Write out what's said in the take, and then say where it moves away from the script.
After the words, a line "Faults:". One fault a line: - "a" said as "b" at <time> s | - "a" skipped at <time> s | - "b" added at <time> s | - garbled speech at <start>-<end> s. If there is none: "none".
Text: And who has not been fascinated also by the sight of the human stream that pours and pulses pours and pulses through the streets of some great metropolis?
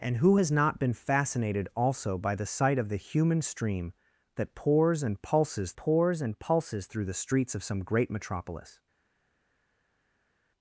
And who has not been fascinated also by the sight of the human stream that pours and pulses pours and pulses through the streets of some great metropolis?
Faults:
none